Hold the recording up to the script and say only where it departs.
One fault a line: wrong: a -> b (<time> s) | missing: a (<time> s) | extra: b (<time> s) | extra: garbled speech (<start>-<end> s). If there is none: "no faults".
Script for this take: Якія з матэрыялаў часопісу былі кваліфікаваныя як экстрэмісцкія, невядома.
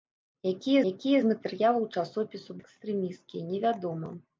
extra: якія (0.9 s)
missing: былі кваліфікаваныя як (2.6 s)